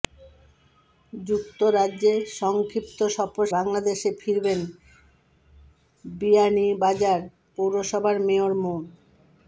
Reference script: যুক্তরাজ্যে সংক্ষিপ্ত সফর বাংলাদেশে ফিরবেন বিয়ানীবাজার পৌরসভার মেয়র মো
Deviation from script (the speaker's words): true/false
false